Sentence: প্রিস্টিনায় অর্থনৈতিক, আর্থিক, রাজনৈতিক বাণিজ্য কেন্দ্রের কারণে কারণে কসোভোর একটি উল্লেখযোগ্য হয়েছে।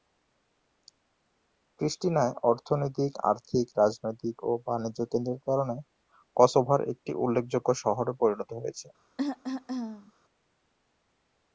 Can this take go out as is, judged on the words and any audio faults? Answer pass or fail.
fail